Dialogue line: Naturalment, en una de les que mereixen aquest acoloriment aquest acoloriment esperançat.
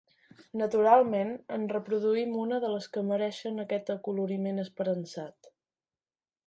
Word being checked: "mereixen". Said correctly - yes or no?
yes